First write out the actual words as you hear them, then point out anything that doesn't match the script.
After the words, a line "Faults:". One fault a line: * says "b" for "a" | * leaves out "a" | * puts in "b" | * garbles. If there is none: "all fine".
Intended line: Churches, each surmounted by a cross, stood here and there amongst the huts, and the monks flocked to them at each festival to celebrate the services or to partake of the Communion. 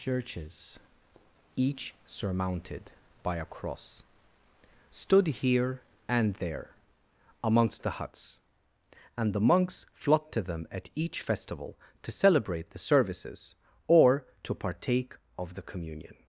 Churches, each surmounted by a cross, stood here and there amongst the huts, and the monks flocked to them at each festival to celebrate the services or to partake of the Communion.
Faults:
all fine